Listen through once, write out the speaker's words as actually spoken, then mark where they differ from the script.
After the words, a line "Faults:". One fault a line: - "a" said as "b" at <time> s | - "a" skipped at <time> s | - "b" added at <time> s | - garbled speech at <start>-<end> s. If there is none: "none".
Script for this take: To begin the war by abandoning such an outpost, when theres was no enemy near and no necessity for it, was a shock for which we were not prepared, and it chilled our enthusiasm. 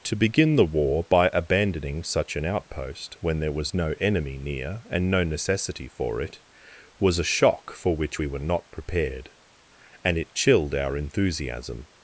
To begin the war by abandoning such an outpost, when there was no enemy near and no necessity for it, was a shock for which we were not prepared, and it chilled our enthusiasm.
Faults:
- "theres" said as "there" at 3.4 s